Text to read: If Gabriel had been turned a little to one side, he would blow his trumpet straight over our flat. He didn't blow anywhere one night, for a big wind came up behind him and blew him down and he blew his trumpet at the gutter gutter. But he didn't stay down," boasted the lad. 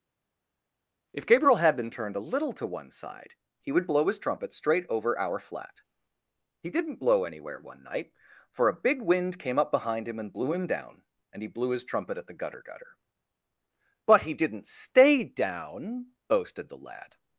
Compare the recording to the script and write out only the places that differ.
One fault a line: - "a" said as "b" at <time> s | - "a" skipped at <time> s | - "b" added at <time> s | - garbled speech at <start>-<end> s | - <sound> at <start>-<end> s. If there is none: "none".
none